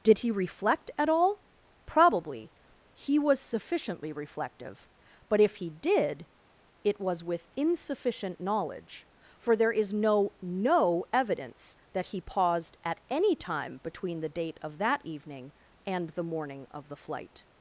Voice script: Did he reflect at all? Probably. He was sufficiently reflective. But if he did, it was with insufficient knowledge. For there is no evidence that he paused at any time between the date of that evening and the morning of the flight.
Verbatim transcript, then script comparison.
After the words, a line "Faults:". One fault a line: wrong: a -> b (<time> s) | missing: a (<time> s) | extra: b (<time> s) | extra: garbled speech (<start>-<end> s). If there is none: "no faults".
Did he reflect at all? Probably. He was sufficiently reflective. But if he did, it was with insufficient knowledge. For there is no no evidence that he paused at any time between the date of that evening and the morning of the flight.
Faults:
extra: no (10.4 s)